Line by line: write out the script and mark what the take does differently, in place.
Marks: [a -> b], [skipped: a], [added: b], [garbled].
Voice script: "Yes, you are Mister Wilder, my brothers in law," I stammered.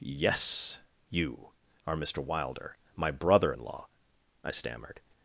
"Yes, you are Mister Wilder, my [brothers -> brother] in law," I stammered.